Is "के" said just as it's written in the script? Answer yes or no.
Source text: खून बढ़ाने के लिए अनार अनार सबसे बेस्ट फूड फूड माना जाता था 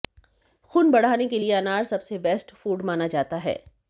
yes